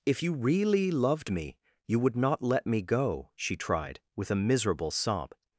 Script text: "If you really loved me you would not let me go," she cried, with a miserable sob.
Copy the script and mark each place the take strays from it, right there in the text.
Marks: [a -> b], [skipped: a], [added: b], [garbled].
"If you really loved me you would not let me go," she [cried, -> tried] with a miserable sob.